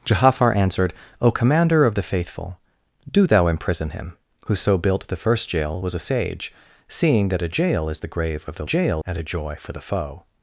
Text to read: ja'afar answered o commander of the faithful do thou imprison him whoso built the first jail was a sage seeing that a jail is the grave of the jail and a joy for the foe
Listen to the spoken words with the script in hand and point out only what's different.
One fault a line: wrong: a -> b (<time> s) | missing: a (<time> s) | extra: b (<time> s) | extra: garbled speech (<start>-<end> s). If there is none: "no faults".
no faults